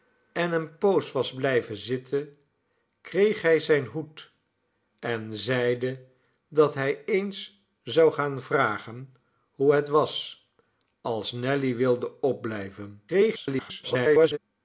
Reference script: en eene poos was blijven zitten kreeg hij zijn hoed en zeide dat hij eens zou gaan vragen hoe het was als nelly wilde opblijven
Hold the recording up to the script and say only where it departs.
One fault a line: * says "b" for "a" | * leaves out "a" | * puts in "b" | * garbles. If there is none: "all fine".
* garbles